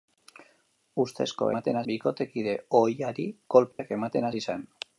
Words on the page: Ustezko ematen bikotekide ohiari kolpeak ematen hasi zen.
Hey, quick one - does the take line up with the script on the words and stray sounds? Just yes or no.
no